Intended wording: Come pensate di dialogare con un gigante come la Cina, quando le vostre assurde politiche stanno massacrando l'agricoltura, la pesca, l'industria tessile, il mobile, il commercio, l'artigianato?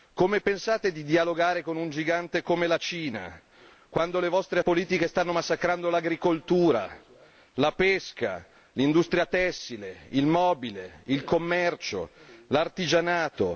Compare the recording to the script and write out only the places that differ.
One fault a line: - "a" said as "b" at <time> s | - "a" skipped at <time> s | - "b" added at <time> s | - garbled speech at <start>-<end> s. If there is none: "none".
- "assurde" skipped at 4.6 s